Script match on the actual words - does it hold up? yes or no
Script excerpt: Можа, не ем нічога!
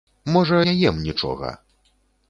yes